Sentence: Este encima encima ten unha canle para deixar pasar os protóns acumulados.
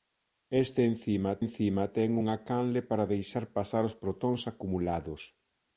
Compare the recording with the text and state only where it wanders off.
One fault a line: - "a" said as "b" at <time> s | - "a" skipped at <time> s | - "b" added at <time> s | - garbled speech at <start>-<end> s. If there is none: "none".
none